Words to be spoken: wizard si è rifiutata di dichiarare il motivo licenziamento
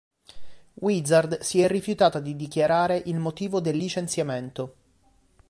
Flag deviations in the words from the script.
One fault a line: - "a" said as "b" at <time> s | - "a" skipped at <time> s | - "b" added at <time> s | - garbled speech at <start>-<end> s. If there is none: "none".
- "del" added at 3.6 s